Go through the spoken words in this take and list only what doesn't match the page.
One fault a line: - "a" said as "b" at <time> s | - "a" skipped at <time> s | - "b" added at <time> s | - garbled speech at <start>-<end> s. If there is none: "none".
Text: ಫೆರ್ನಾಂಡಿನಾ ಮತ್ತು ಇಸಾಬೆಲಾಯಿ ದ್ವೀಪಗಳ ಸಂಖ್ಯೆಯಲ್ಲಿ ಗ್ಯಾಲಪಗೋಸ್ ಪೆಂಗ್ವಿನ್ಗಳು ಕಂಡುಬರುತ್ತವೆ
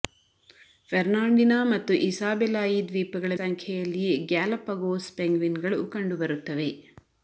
none